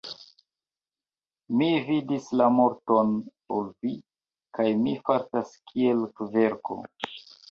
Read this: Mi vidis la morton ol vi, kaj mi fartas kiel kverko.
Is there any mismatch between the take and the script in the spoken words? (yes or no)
no